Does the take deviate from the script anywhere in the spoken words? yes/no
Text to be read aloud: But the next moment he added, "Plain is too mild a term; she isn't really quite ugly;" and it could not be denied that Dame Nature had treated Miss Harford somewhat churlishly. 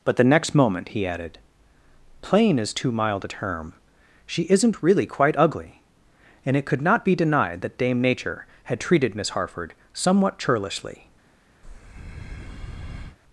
no